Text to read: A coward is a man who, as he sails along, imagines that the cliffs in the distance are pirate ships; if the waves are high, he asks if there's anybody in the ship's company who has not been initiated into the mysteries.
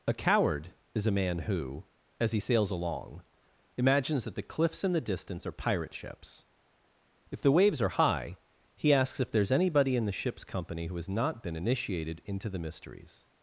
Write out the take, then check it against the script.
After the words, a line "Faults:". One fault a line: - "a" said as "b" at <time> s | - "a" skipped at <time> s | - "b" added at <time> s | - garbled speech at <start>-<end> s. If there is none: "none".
A coward is a man who, as he sails along, imagines that the cliffs in the distance are pirate ships; if the waves are high, he asks if there's anybody in the ship's company who has not been initiated into the mysteries.
Faults:
none